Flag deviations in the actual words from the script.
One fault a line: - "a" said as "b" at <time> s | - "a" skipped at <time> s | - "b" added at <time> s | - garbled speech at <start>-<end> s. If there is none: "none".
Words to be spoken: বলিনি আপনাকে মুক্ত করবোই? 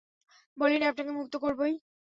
none